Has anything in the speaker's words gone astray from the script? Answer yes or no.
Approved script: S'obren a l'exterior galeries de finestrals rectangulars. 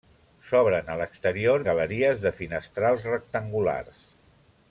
no